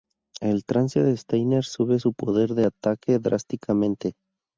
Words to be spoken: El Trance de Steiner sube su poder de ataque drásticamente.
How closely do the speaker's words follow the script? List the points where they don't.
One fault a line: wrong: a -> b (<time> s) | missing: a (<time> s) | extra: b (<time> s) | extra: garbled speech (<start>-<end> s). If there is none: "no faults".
no faults